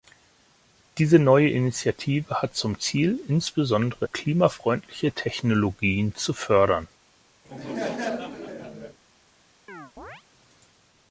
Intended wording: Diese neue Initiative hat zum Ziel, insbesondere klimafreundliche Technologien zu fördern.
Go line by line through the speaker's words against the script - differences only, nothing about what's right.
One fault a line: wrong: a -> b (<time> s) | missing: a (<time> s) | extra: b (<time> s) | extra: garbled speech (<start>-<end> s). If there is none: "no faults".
no faults